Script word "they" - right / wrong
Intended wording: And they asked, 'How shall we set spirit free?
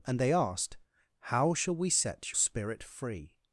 right